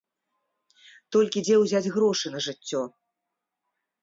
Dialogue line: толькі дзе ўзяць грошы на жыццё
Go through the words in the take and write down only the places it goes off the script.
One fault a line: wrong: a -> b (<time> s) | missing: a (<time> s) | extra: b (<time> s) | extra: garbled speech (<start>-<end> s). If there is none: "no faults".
no faults